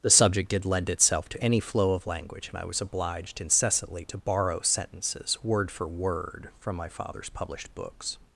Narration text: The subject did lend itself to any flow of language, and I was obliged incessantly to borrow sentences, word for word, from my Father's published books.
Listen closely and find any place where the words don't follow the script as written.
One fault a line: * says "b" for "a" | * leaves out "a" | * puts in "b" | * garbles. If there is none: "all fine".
all fine